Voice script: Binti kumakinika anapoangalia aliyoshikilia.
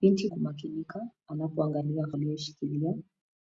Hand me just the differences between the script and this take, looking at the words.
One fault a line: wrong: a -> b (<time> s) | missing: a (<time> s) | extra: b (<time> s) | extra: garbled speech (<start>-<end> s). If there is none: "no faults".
no faults